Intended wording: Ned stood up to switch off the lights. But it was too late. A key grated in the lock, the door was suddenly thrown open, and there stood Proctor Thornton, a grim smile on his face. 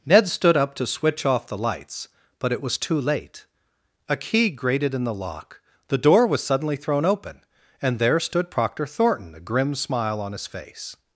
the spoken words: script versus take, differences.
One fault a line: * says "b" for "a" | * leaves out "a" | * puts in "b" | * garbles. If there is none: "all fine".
all fine